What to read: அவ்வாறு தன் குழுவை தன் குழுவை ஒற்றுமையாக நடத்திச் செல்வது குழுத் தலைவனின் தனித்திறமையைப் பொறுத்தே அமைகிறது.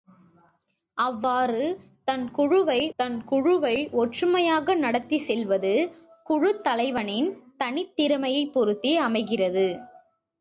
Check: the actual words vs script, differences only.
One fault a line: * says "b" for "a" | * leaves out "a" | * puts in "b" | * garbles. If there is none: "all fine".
all fine